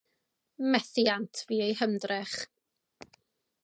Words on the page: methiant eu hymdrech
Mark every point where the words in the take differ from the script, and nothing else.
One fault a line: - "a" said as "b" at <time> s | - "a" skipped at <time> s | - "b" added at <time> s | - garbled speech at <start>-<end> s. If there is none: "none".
- "fu" added at 1.4 s